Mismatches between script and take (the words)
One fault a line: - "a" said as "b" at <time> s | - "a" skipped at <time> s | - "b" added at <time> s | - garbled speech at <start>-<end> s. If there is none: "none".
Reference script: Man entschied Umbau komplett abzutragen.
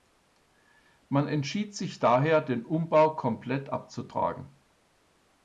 - "sich daher den" added at 1.8 s